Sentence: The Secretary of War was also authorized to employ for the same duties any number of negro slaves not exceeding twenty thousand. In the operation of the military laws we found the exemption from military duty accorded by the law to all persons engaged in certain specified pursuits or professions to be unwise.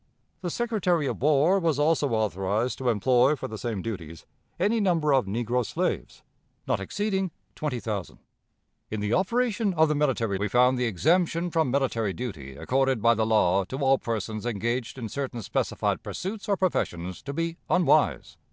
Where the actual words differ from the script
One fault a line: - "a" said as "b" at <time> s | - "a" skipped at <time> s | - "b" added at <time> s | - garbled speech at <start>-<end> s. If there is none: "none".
- "laws" skipped at 10.4 s